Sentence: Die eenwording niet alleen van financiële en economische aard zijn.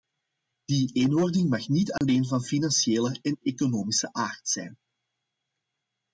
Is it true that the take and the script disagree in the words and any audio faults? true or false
true